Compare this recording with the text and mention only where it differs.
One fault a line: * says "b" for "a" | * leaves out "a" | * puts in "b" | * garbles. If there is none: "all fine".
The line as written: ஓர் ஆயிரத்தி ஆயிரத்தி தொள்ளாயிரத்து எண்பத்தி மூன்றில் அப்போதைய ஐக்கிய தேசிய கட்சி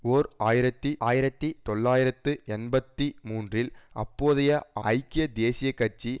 all fine